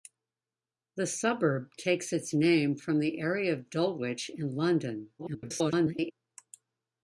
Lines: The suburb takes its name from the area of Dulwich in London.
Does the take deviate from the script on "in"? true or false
false